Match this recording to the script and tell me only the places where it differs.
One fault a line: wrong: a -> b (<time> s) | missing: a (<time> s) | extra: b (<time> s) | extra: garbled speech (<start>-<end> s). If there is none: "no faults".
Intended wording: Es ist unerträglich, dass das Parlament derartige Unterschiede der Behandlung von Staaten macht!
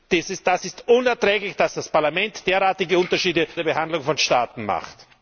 no faults